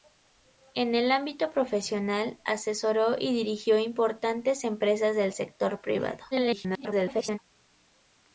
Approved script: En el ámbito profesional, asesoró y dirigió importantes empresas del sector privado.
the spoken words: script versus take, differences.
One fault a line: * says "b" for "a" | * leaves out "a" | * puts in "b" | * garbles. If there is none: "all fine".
* garbles